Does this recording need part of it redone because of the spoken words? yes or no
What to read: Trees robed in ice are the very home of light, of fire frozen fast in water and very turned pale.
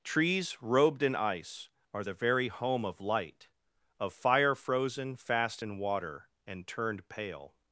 yes